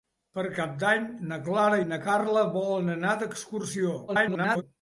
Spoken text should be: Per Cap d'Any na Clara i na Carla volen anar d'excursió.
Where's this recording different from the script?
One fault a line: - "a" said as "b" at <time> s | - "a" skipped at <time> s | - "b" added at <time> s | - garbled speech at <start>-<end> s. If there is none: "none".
- garbled speech at 4.1-4.6 s